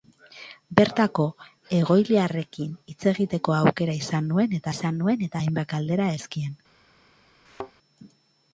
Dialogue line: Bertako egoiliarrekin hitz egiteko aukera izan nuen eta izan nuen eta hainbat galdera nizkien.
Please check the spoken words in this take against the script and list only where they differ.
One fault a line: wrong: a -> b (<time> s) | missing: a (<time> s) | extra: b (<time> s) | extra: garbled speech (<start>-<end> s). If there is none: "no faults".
no faults